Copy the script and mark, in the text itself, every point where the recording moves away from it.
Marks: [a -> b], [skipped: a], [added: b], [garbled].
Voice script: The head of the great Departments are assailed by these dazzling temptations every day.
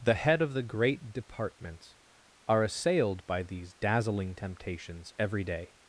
The head of the great Departments are assailed by these dazzling temptations every day.